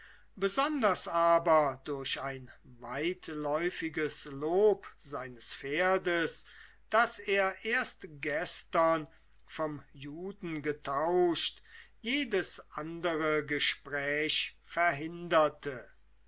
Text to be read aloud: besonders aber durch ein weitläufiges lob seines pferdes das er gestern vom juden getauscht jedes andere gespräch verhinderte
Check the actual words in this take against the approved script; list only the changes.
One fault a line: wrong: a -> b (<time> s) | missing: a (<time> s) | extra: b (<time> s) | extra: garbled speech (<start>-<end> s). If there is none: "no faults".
extra: erst (7.6 s)